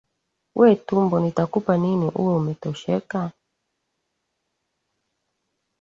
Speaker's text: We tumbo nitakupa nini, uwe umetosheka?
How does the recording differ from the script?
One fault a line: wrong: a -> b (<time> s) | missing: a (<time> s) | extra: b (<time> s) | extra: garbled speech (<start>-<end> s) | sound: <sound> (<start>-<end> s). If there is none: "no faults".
no faults